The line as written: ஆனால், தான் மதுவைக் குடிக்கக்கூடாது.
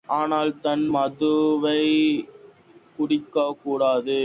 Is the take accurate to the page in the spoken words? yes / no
yes